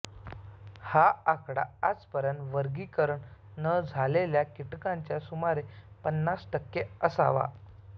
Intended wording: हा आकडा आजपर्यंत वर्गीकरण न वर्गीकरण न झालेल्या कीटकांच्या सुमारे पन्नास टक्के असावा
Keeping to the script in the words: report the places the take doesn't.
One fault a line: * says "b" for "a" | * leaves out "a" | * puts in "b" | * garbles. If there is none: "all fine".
* leaves out "वर्गीकरण न"